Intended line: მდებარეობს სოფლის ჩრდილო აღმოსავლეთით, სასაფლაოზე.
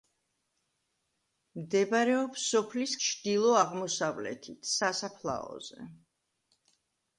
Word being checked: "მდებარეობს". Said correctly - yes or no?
yes